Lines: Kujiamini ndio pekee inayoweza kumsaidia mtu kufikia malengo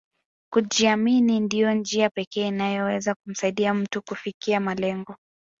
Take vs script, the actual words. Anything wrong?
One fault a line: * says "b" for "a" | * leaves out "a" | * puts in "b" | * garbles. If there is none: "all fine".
* puts in "njia"